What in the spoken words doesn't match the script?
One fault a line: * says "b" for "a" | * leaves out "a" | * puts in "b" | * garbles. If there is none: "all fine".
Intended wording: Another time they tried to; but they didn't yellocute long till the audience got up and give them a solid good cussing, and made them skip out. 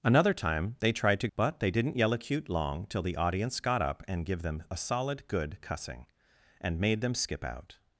all fine